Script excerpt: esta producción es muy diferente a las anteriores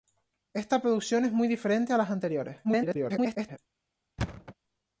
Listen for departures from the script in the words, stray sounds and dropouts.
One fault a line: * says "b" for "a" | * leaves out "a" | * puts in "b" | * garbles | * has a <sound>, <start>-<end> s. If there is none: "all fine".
* garbles
* has a thud, 4.2-4.5 s